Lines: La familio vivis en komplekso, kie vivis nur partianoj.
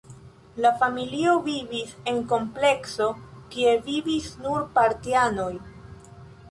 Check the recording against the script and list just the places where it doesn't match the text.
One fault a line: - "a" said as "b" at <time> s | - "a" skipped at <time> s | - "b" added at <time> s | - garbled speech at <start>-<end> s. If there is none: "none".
none